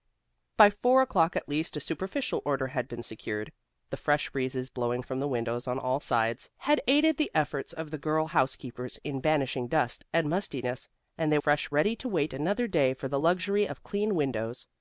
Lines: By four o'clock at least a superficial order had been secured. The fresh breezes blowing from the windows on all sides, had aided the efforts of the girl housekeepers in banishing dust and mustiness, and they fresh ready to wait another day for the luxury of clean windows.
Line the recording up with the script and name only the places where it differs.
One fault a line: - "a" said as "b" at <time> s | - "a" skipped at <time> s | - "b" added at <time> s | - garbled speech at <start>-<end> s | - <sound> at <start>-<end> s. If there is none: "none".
none